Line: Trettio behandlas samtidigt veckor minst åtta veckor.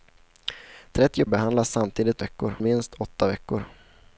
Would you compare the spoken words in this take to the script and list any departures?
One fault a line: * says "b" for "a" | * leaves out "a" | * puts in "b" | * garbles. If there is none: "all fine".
all fine